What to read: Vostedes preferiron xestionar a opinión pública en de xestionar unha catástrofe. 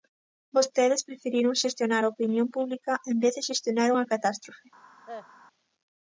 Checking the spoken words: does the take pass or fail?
fail